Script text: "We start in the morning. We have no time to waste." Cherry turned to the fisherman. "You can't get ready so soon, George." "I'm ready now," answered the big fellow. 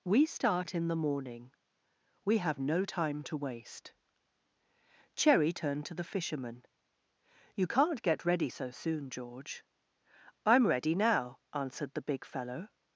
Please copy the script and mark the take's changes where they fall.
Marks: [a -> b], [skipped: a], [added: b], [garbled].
"We start in the morning. We have no time to waste." Cherry turned to the fisherman. "You can't get ready so soon, George." "I'm ready now," answered the big fellow.